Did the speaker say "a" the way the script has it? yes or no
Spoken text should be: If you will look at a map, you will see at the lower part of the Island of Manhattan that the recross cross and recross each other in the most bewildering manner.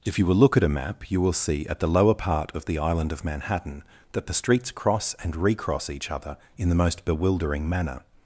yes